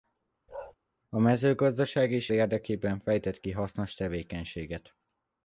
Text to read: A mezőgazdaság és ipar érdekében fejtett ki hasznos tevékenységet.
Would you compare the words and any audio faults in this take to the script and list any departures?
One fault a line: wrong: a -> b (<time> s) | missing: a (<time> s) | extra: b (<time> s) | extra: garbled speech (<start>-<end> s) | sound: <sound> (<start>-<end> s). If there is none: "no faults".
sound: bark (0.5-0.8 s)
missing: ipar (2.3 s)